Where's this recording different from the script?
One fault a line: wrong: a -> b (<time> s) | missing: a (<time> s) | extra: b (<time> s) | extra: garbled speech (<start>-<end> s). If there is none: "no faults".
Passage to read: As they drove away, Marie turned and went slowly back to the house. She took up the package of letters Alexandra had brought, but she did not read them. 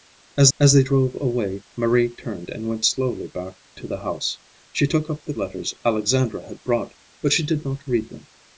extra: as (0.6 s)
missing: package of (5.3 s)